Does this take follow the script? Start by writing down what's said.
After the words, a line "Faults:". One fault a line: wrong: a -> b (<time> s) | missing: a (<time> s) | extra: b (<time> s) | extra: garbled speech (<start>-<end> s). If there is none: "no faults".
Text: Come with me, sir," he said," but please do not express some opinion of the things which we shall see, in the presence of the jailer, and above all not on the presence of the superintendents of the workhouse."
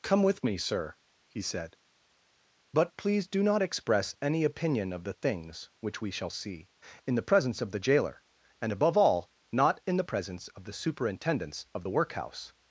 Come with me, sir," he said," but please do not express any opinion of the things which we shall see, in the presence of the jailer, and above all not in the presence of the superintendents of the workhouse."
Faults:
wrong: some -> any (4.2 s)
wrong: on -> in (9.8 s)